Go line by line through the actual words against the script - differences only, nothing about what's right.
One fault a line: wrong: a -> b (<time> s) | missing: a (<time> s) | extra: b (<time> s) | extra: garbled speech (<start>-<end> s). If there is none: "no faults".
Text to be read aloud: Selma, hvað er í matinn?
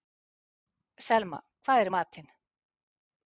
no faults